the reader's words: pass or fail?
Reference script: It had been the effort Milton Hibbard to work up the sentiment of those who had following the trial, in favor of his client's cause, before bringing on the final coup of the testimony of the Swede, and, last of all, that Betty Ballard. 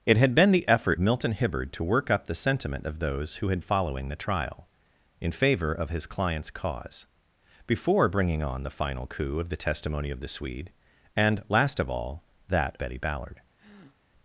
pass